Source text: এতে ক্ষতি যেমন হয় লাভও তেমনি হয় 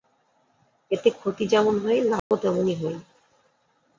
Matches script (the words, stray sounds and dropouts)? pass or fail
fail